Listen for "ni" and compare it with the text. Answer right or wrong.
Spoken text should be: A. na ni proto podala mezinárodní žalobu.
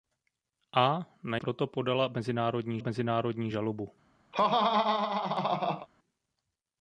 wrong